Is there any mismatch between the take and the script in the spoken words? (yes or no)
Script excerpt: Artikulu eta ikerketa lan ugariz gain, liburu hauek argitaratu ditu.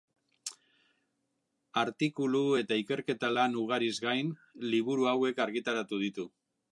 no